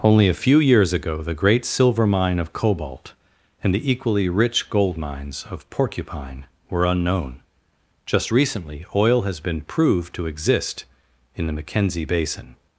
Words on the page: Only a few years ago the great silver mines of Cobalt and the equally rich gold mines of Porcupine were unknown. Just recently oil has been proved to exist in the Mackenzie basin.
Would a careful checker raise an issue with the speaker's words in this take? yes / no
yes